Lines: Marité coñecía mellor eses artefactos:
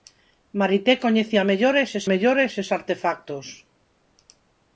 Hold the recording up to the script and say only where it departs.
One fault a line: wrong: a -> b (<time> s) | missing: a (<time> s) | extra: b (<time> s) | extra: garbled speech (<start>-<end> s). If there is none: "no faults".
extra: mellor eses (2.1 s)